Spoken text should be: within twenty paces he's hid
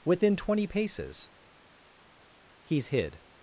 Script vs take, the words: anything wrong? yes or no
no